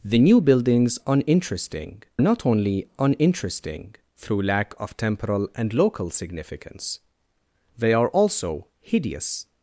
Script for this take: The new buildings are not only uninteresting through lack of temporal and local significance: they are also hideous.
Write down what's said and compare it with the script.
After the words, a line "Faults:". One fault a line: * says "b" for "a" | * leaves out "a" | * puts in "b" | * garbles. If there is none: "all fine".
The new buildings uninteresting not only uninteresting through lack of temporal and local significance: they are also hideous.
Faults:
* says "uninteresting" for "are"